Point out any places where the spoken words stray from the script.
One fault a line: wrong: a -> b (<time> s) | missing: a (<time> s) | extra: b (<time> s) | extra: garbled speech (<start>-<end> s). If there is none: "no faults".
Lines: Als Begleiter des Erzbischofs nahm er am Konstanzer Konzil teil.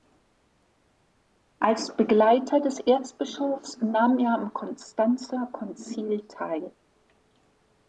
no faults